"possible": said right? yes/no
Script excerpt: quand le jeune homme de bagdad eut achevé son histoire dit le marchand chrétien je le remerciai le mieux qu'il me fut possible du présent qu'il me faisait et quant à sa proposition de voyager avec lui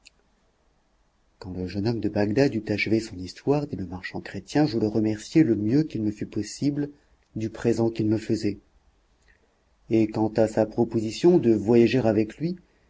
yes